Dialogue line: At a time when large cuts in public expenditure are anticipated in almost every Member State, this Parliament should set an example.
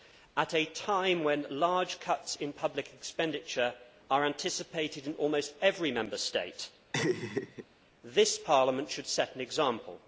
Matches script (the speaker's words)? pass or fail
pass